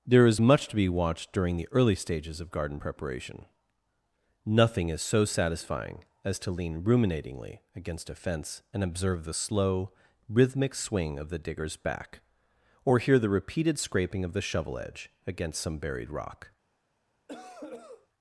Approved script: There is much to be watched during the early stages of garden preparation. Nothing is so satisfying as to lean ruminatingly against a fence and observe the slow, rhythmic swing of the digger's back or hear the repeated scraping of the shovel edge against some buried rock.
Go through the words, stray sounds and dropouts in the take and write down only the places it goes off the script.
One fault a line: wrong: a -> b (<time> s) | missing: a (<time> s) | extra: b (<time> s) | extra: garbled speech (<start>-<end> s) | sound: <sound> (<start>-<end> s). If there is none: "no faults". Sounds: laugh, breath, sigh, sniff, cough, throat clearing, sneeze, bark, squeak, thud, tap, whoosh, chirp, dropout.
sound: cough (17.3-18.1 s)